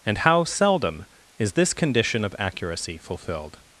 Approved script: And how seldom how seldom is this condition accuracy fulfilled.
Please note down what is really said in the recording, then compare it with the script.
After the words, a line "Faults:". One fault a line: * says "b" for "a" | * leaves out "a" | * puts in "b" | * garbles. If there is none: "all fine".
And how seldom is this condition of accuracy fulfilled.
Faults:
* leaves out "how seldom"
* puts in "of"